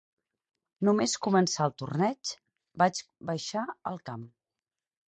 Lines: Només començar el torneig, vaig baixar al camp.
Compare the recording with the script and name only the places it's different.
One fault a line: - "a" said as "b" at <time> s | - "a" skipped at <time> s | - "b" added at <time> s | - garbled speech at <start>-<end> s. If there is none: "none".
none